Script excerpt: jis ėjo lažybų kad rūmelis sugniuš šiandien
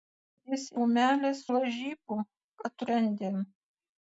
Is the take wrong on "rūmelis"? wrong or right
wrong